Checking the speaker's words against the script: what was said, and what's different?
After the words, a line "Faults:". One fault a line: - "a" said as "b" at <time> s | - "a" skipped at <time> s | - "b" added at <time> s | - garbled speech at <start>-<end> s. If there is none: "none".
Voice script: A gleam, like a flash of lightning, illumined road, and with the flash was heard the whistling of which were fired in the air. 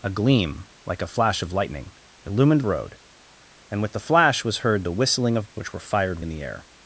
A gleam, like a flash of lightning, illumined road, and with the flash was heard the whistling of which were fired in the air.
Faults:
none